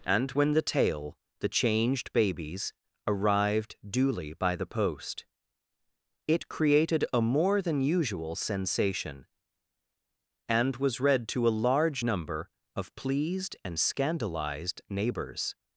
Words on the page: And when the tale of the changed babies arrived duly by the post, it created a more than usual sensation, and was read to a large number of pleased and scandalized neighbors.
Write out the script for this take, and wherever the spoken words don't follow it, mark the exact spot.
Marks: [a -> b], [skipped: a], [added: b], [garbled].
And when the tale [skipped: of] the changed babies arrived duly by the post, it created a more than usual sensation, and was read to a large number of pleased and scandalized neighbors.